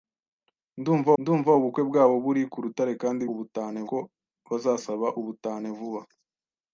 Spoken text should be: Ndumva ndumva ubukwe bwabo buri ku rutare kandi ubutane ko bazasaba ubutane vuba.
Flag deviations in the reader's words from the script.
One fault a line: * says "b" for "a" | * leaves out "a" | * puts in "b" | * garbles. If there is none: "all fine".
all fine